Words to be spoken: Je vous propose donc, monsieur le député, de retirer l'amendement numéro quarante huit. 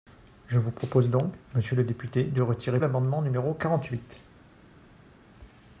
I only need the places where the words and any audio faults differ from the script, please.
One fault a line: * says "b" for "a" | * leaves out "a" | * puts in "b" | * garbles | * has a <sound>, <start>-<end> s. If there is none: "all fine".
all fine